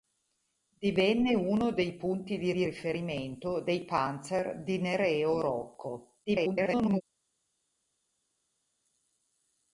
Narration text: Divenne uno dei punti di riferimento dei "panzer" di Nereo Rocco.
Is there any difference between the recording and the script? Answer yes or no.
yes